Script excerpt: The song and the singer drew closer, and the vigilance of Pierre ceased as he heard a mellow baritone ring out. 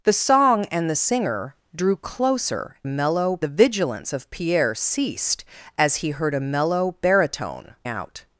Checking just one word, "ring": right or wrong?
wrong